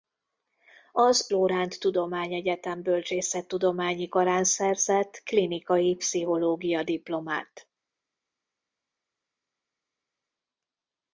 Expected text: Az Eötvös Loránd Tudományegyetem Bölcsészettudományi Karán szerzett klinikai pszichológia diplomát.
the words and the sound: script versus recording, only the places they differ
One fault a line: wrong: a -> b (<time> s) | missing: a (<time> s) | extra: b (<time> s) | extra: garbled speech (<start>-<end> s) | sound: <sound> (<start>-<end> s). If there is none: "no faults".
missing: Eötvös (1.3 s)